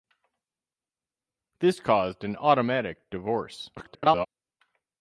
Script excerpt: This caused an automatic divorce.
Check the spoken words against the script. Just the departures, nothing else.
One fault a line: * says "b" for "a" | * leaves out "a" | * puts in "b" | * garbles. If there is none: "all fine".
* garbles